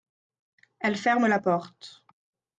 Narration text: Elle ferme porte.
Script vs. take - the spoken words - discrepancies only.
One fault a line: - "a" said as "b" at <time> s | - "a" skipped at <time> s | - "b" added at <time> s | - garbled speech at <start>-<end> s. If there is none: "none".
- "la" added at 1.3 s